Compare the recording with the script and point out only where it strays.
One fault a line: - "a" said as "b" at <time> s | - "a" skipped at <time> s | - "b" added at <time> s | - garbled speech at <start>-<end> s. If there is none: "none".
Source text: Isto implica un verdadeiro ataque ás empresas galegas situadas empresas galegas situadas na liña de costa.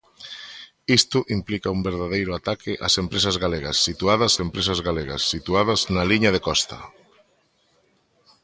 none